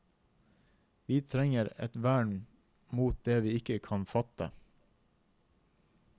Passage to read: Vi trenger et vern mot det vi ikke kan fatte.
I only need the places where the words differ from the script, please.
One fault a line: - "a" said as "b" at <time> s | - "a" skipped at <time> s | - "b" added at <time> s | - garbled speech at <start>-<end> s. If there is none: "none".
none